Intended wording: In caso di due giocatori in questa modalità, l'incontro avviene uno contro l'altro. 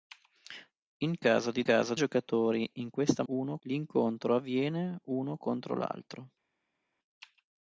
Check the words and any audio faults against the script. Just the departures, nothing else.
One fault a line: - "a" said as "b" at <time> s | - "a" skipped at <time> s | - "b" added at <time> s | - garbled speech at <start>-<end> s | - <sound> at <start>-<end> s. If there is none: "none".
- "due" said as "caso" at 1.6 s
- "modalità" said as "uno" at 3.3 s